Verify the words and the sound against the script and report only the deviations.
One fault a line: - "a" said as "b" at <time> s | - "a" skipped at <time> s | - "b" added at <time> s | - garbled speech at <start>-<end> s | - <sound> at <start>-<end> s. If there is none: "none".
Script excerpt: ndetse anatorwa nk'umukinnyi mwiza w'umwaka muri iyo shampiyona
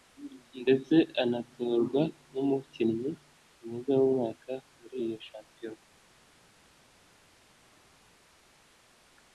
none